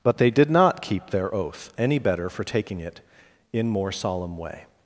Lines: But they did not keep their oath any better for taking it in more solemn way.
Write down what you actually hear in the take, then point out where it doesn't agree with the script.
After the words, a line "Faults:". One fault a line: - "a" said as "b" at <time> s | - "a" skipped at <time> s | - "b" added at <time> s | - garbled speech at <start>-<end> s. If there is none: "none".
But they did not keep their oath any better for taking it in more solemn way.
Faults:
none